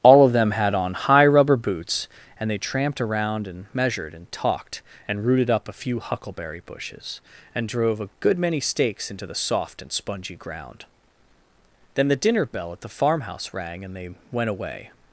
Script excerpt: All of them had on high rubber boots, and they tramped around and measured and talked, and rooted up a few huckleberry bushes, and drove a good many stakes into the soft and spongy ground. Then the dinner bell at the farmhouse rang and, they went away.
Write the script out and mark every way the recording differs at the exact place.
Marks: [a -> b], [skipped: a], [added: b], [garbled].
All of them had on high rubber boots, and they tramped around and measured and talked, and rooted up a few huckleberry bushes, and drove a good many stakes into the soft and spongy ground. Then the dinner bell at the farmhouse rang and, they went away.